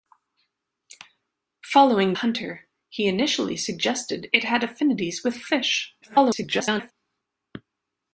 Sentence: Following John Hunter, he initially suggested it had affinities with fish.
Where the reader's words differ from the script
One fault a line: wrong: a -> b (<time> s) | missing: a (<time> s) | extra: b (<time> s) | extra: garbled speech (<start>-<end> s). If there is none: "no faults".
missing: John (2.1 s)
extra: garbled speech (6.0-6.9 s)